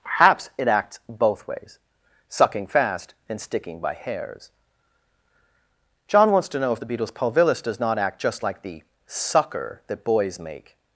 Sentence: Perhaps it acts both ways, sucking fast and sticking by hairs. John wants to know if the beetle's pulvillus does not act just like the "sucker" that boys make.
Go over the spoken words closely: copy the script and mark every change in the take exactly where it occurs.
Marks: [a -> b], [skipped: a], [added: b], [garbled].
Perhaps it acts both ways, sucking fast and sticking by hairs. John wants to know if the beetle's pulvillus does not act just like the "sucker" that boys make.